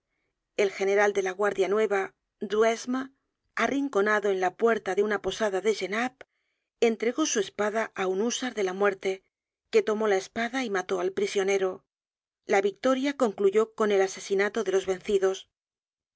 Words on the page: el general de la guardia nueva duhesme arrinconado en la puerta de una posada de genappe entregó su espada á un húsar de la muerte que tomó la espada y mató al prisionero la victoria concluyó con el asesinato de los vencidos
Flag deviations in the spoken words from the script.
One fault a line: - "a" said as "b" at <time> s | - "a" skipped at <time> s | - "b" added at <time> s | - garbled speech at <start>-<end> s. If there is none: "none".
none